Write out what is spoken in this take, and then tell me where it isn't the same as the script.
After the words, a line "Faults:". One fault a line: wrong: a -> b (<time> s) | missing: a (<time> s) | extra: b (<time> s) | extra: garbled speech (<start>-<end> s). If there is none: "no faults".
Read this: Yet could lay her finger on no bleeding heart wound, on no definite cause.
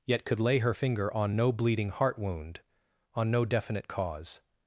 Yet could lay her finger on no bleeding heart wound, on no definite cause.
Faults:
no faults